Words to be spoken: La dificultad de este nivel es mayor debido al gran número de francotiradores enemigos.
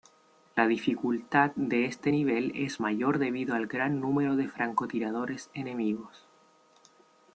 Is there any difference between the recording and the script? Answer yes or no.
no